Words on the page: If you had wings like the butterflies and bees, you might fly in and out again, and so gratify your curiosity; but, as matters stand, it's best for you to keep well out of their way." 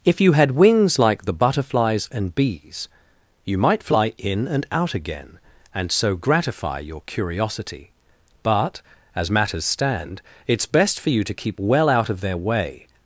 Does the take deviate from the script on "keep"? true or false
false